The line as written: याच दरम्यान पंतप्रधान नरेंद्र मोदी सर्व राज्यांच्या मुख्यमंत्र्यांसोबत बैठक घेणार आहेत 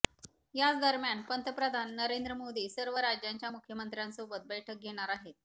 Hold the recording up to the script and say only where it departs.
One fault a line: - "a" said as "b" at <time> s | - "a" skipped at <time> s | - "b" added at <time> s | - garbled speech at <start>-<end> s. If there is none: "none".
none